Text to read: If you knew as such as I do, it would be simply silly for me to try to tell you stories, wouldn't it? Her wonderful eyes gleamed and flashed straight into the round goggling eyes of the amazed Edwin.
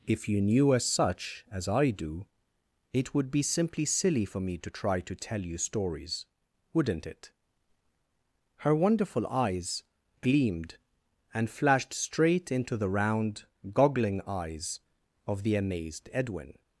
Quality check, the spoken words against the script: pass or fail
pass